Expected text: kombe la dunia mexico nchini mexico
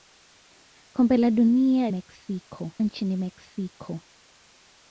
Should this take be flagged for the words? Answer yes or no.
no